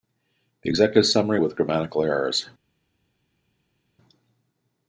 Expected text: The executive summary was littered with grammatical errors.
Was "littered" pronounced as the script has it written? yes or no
no